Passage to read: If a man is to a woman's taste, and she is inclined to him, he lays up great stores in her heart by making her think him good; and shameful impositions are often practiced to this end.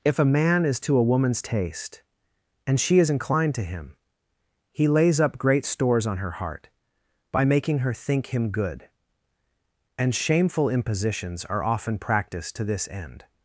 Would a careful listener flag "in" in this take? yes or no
yes